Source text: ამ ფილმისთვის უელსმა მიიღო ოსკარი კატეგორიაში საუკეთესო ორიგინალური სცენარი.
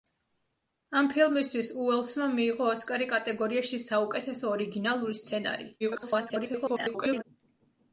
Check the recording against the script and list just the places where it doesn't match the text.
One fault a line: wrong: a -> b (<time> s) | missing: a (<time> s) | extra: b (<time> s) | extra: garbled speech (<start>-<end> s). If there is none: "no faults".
extra: garbled speech (5.8-7.2 s)